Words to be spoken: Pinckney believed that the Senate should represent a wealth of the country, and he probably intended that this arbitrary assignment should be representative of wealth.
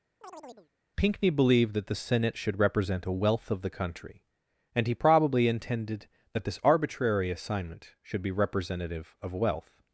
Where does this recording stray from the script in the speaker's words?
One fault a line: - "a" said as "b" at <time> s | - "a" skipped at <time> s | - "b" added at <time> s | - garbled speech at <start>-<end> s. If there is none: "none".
none